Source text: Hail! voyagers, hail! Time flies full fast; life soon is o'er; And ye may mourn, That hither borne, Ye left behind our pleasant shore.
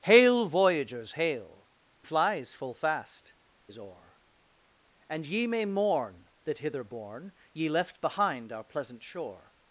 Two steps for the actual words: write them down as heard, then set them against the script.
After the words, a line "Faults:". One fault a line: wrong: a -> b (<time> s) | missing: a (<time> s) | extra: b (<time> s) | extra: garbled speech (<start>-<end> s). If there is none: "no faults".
Hail! voyagers, hail! Flies full fast; is o'er; And ye may mourn, That hither borne, Ye left behind our pleasant shore.
Faults:
missing: Time (1.7 s)
missing: life soon (3.4 s)